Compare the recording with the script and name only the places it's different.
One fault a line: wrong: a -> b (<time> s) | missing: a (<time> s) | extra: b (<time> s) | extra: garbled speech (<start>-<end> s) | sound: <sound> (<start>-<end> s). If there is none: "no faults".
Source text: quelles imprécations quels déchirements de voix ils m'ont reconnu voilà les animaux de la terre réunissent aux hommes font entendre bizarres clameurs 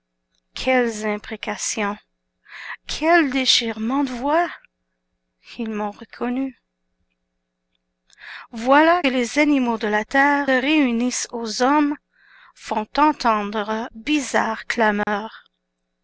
sound: dropout (15.0-15.1 s)